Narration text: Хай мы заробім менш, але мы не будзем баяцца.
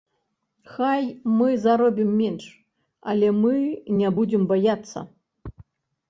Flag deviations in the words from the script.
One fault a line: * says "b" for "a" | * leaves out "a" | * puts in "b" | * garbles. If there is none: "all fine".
all fine